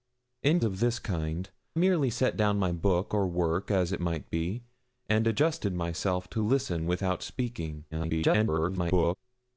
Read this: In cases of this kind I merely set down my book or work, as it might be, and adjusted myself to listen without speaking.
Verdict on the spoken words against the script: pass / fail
fail